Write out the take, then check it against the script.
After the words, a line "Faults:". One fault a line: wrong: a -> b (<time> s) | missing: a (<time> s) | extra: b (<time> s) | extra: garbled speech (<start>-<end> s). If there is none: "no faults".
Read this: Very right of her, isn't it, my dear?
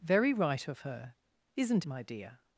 Very right of her, isn't my dear?
Faults:
missing: it (1.9 s)